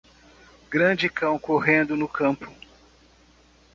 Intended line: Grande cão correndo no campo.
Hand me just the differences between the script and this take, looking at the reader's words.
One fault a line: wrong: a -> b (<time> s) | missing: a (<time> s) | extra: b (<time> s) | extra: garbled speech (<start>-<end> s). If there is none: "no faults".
no faults